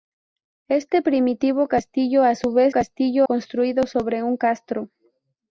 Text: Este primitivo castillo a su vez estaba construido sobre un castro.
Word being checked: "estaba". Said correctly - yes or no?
no